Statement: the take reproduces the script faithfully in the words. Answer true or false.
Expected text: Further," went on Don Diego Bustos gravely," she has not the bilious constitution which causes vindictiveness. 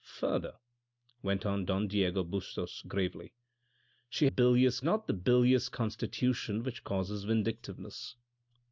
false